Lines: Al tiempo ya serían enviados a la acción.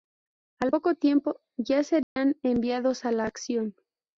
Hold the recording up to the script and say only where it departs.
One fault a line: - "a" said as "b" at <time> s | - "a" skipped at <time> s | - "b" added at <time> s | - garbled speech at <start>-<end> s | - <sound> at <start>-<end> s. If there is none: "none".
- "poco" added at 0.7 s
- dropout at 2.0-2.2 s